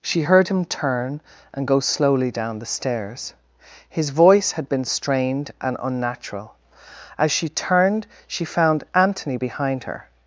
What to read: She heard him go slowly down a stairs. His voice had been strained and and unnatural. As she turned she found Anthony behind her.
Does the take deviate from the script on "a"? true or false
true